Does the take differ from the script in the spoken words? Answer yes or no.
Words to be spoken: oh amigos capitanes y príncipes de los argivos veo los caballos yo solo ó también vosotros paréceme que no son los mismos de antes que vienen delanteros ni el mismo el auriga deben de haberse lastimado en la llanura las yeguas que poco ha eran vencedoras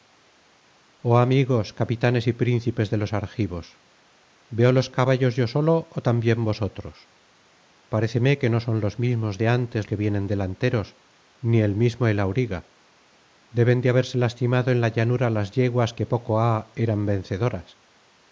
no